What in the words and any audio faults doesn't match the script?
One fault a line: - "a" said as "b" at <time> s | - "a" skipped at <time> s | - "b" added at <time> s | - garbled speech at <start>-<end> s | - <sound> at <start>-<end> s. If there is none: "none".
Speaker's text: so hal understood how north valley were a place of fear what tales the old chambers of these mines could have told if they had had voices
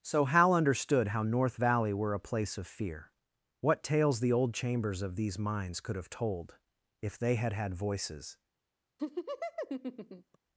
- laugh at 9.0-10.4 s